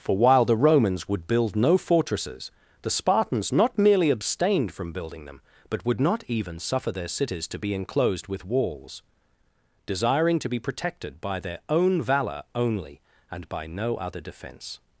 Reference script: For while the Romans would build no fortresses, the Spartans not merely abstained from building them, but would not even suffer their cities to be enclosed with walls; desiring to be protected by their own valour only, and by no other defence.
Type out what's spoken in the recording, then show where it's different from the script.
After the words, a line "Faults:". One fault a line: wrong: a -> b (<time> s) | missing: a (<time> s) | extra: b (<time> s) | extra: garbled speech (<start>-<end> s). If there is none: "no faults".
For while the Romans would build no fortresses, the Spartans not merely abstained from building them, but would not even suffer their cities to be enclosed with walls; desiring to be protected by their own valour only, and by no other defence.
Faults:
no faults